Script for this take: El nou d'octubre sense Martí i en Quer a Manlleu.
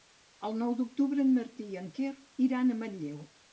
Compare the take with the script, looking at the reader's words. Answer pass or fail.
fail